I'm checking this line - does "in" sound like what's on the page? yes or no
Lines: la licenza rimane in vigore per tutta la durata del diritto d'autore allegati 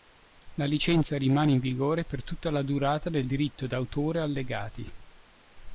yes